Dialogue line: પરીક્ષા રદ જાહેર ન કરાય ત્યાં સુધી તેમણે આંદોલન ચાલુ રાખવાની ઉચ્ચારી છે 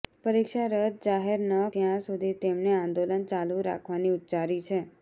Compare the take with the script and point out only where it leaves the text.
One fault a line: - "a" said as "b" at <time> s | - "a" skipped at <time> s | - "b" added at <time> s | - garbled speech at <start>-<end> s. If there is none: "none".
- "કરાય" skipped at 1.5 s